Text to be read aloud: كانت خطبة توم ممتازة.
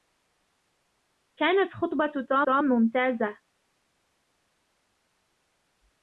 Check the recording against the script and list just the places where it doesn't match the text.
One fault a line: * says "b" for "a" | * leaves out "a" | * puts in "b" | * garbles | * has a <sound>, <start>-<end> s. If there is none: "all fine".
* puts in "توم"